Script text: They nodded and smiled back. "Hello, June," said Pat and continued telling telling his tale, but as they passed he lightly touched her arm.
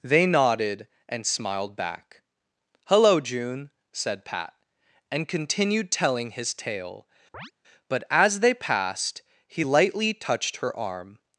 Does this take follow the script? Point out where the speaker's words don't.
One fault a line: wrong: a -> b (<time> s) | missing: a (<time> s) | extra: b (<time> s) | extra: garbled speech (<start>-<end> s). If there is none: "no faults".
missing: telling (6.3 s)